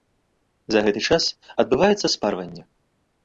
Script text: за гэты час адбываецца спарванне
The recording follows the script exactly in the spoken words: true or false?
true